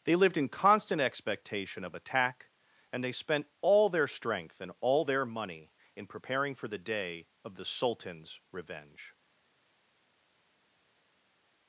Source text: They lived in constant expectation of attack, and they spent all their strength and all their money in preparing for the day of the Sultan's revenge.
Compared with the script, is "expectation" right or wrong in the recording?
right